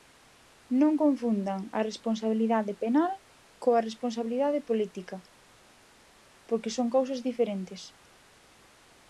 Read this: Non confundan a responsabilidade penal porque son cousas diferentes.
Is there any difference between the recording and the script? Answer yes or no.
yes